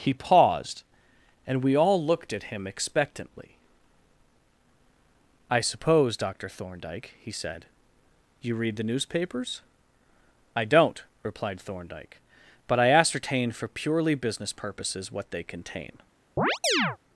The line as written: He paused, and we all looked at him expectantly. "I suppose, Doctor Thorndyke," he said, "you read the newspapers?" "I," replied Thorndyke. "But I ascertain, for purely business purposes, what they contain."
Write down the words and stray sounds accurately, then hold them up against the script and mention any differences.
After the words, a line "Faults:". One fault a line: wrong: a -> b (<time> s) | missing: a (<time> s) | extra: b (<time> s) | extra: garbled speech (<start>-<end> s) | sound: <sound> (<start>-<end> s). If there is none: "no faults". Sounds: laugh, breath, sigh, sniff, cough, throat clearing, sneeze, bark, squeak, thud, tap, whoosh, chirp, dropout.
He paused, and we all looked at him expectantly. "I suppose, Doctor Thorndyke," he said, "you read the newspapers?" "I don't," replied Thorndyke. "But I ascertain, for purely business purposes, what they contain."
Faults:
extra: don't (10.7 s)
sound: chirp (16.4-17.0 s)